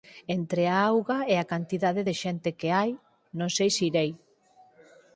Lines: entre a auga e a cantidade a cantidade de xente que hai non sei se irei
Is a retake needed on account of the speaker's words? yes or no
yes